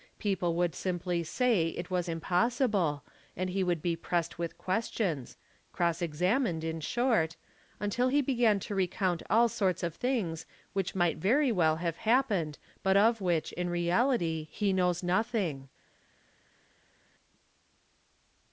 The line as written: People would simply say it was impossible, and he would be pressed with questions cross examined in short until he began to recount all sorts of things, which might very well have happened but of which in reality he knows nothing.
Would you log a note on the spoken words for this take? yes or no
no